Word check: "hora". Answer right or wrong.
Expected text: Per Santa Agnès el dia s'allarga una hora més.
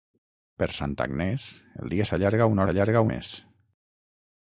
wrong